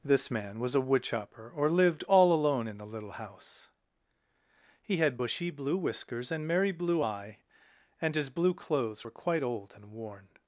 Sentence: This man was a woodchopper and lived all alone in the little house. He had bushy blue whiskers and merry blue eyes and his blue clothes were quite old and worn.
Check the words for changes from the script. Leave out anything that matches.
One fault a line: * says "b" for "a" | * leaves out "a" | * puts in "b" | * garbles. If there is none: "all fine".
* says "or" for "and"
* says "eye" for "eyes"